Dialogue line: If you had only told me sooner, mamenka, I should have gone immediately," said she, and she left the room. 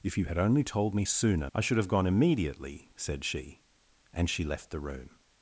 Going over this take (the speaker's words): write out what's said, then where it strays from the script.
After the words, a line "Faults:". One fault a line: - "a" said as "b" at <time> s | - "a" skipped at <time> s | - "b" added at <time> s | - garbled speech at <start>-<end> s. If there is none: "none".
If you had only told me sooner, I should have gone immediately," said she, and she left the room.
Faults:
- "mamenka" skipped at 1.5 s